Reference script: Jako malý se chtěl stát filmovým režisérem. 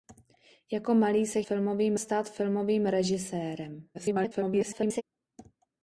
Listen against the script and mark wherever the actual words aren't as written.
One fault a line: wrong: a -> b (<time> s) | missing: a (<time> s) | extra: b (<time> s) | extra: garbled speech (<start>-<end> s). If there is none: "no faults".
wrong: chtěl -> filmovým (1.4 s)
extra: garbled speech (3.9-5.0 s)